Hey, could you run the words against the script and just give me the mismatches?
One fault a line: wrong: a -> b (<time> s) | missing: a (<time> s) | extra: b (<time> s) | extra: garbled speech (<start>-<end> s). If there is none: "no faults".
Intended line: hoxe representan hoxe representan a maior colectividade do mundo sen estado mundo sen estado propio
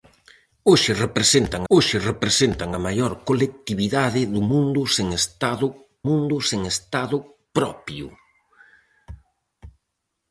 no faults